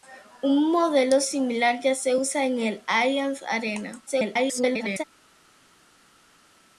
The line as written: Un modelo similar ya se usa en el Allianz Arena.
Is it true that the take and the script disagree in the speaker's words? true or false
true